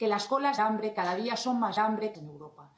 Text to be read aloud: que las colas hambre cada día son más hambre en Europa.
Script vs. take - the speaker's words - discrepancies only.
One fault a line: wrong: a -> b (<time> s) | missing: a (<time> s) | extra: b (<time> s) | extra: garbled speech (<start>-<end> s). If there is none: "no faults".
no faults